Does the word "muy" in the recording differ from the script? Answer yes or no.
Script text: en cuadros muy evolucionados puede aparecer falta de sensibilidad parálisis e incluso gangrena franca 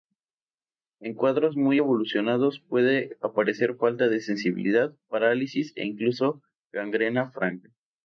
no